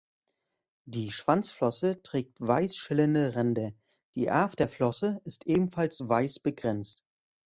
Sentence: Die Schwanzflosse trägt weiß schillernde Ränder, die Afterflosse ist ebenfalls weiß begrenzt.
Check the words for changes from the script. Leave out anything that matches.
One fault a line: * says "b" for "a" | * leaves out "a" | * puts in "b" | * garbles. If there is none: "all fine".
all fine